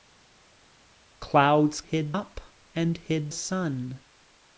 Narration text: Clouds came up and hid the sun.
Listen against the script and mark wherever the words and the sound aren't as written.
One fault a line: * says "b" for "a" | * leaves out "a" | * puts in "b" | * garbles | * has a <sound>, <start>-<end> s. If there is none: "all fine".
* says "hid" for "came"
* leaves out "the"